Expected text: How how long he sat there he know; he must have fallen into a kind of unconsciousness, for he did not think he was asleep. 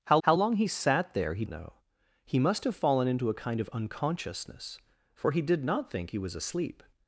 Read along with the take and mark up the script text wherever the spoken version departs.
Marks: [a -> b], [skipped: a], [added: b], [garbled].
How how long he sat there he know; he must have fallen into a kind of unconsciousness, for he did not think he was asleep.